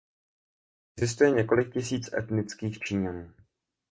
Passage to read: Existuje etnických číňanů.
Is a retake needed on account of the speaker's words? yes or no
yes